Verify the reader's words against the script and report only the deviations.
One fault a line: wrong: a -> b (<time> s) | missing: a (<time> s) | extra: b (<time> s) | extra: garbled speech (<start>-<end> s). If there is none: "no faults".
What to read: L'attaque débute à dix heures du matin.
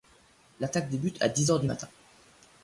no faults